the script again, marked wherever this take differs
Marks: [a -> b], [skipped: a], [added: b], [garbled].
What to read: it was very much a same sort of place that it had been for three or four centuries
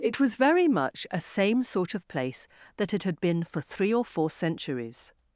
it was very much a same sort of place that it had been for three or four centuries